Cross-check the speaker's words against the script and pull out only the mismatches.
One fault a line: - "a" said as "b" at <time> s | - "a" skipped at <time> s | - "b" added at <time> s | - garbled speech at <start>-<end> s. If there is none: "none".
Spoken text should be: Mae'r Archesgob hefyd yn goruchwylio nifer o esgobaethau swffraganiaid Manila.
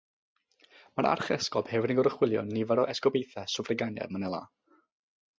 none